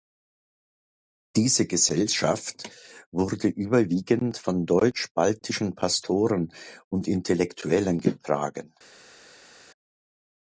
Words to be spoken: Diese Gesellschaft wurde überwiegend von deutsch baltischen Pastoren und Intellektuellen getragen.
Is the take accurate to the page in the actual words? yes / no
yes